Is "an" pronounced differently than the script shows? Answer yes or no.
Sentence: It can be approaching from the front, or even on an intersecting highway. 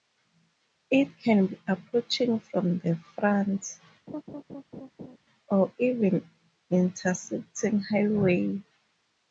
yes